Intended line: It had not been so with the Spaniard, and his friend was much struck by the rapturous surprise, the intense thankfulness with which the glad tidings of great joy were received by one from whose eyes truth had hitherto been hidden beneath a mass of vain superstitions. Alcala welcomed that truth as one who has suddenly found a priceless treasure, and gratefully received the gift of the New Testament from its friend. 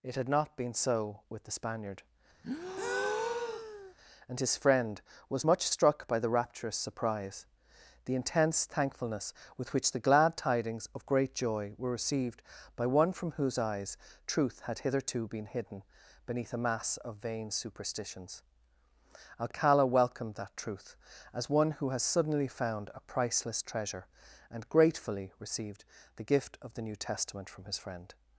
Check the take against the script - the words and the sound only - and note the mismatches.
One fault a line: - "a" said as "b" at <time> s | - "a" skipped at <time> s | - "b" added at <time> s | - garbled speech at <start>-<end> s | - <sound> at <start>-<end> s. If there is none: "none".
- breath at 2.4-3.9 s
- "its" said as "his" at 27.6 s